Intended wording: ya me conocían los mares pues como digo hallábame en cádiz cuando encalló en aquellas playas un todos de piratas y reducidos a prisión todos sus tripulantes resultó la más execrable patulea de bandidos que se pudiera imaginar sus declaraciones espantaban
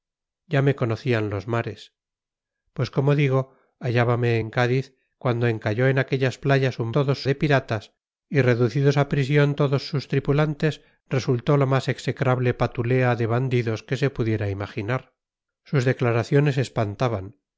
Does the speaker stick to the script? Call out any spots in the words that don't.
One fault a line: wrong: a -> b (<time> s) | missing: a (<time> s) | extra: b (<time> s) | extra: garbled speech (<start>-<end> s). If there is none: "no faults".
no faults